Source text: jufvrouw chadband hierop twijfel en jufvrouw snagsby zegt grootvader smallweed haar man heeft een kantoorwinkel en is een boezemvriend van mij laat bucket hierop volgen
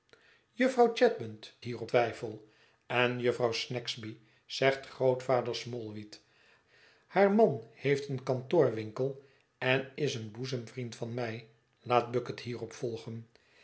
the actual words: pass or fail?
pass